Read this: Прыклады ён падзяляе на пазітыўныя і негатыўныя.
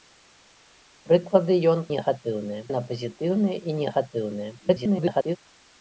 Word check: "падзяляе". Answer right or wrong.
wrong